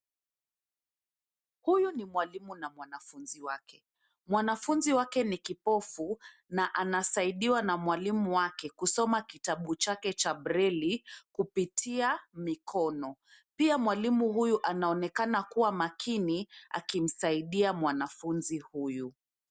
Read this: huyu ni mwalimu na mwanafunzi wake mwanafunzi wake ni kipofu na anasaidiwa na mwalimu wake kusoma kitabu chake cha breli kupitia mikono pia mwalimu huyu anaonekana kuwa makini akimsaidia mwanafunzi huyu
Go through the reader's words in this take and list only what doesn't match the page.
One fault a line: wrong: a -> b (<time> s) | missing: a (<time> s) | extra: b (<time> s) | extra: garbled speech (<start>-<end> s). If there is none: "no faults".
no faults